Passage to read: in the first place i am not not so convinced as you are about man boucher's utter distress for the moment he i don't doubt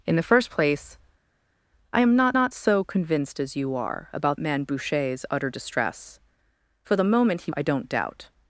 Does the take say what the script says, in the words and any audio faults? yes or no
yes